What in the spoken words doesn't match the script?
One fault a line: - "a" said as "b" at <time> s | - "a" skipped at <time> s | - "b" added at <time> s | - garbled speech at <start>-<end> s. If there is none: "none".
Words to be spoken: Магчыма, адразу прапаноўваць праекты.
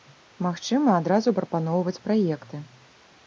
none